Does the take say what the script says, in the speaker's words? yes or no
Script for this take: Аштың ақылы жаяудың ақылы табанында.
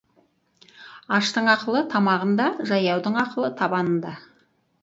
no